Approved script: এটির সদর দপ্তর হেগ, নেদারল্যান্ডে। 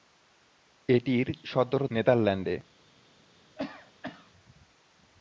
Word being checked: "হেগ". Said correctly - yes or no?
no